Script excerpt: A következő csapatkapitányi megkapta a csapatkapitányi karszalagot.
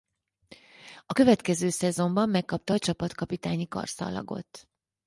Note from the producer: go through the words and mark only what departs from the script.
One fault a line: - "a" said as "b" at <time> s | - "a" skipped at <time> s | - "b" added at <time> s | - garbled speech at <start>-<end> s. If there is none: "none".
- "csapatkapitányi" said as "szezonban" at 1.7 s